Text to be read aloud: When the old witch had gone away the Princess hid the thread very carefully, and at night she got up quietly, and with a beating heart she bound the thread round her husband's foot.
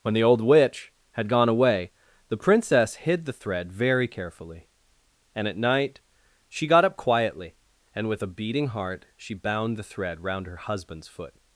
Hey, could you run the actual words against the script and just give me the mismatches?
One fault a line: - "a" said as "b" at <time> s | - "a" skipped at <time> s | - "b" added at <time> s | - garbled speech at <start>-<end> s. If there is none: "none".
none